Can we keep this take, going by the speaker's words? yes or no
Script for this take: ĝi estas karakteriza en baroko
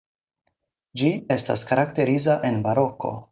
yes